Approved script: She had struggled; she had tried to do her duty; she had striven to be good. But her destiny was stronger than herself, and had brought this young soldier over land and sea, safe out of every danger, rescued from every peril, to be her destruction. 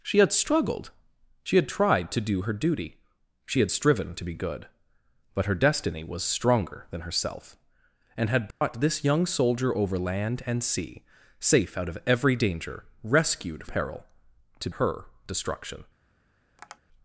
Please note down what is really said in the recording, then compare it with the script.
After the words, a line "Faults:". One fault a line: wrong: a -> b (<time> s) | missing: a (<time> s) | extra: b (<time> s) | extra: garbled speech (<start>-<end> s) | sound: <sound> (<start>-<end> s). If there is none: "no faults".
She had struggled; she had tried to do her duty; she had striven to be good. But her destiny was stronger than herself, and had brought this young soldier over land and sea, safe out of every danger, rescued peril, to her destruction.
Faults:
sound: dropout (8.5-8.6 s)
missing: from every (13.7 s)
missing: be (14.7 s)
sound: tap (16.6-16.8 s)